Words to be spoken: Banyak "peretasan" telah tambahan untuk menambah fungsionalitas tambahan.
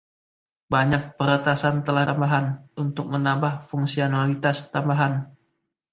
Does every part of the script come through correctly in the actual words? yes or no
yes